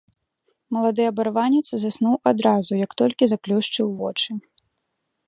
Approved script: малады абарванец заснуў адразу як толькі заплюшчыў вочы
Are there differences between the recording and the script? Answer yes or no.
no